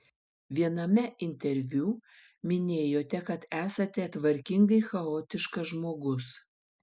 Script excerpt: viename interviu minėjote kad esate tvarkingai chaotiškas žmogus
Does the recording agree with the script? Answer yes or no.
yes